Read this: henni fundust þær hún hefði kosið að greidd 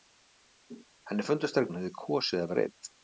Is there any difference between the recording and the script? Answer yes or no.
no